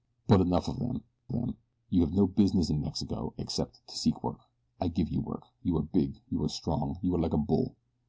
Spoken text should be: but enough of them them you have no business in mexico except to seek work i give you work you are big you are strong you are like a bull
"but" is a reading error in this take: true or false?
false